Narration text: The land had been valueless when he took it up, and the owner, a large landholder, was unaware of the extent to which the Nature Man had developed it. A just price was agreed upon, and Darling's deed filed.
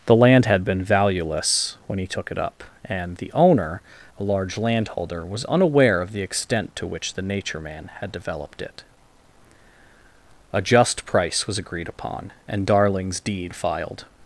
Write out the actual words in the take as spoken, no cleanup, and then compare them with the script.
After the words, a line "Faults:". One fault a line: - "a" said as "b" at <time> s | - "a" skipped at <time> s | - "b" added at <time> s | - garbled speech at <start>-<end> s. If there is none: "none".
The land had been valueless when he took it up, and the owner, a large landholder, was unaware of the extent to which the Nature Man had developed it. A just price was agreed upon, and Darling's deed filed.
Faults:
none